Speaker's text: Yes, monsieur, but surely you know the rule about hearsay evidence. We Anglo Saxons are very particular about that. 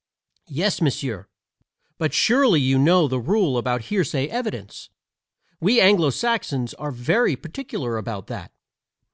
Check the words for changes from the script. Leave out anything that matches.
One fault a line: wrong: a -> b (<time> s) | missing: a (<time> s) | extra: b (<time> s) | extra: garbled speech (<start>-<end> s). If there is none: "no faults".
no faults